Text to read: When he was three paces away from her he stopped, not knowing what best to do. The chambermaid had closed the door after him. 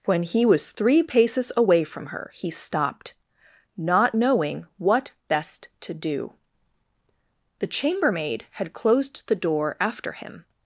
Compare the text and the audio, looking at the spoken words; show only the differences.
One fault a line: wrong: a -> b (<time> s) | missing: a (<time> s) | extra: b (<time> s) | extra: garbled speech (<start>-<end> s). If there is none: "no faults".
no faults